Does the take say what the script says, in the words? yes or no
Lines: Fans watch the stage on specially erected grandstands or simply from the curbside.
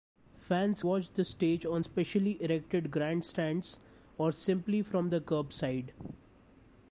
yes